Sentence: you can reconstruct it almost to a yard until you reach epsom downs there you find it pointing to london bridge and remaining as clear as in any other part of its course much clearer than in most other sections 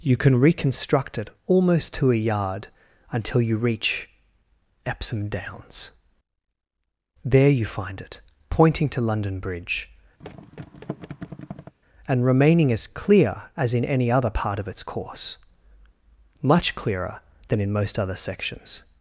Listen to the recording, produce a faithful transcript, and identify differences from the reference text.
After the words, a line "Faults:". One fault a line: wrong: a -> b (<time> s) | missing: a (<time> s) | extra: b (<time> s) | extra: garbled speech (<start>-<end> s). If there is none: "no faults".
you can reconstruct it almost to a yard until you reach epsom downs there you find it pointing to london bridge and remaining as clear as in any other part of its course much clearer than in most other sections
Faults:
no faults